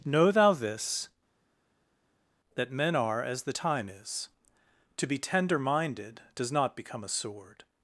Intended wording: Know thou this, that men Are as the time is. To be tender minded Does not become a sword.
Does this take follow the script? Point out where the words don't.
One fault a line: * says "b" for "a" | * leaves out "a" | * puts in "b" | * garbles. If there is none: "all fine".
all fine